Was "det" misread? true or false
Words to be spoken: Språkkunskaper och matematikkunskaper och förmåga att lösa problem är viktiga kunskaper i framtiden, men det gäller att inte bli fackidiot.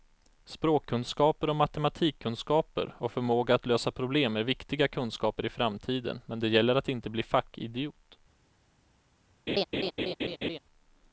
false